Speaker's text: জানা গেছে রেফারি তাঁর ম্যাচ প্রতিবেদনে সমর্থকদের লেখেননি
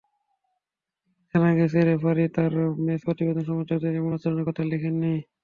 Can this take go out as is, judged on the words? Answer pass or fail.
fail